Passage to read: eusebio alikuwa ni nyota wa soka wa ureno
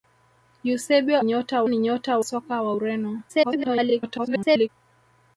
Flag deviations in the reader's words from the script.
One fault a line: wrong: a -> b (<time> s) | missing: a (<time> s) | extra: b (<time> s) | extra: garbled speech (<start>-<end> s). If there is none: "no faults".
wrong: alikuwa -> nyota (1.2 s)
missing: wa (2.2 s)
extra: garbled speech (3.3-4.7 s)